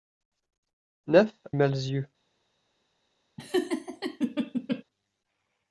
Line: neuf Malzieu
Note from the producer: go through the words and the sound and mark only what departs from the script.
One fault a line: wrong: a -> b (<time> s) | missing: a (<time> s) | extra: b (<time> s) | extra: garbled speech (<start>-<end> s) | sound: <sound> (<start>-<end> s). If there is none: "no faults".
sound: laugh (3.4-4.8 s)